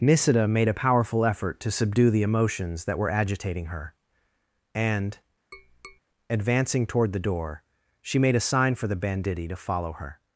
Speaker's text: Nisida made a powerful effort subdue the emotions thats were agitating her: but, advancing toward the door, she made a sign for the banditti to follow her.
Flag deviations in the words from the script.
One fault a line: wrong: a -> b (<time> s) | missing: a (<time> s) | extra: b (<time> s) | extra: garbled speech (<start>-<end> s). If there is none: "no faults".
extra: to (1.6 s)
wrong: thats -> that (2.8 s)
wrong: but -> and (4.7 s)